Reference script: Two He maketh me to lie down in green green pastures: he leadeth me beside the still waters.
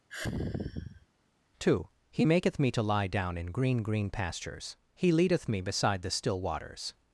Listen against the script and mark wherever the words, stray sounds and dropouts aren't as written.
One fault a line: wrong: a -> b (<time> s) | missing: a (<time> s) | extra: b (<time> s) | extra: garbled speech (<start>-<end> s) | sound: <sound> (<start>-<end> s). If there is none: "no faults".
sound: sigh (0.1-1.1 s)